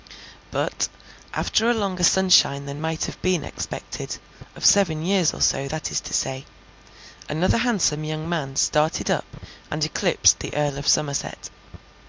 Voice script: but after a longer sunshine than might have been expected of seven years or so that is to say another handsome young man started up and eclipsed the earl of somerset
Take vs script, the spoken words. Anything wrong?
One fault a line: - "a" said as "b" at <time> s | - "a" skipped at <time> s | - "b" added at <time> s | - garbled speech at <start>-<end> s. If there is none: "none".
none